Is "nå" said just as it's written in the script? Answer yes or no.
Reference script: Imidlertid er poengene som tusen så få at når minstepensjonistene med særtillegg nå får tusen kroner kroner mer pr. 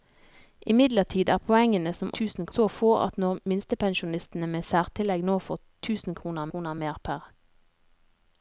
yes